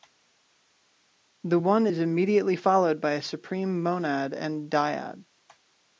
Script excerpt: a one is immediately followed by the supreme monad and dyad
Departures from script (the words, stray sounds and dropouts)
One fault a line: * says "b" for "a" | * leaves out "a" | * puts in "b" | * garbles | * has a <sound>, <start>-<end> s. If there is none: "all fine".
* says "the" for "a"
* says "a" for "the"